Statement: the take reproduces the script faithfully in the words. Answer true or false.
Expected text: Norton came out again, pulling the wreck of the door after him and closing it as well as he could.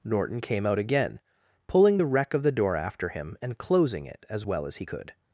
true